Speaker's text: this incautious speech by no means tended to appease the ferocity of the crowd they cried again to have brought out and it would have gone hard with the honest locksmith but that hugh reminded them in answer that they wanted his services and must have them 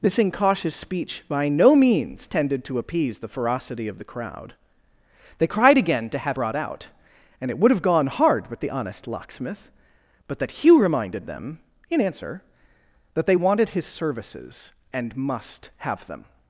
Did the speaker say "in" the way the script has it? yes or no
yes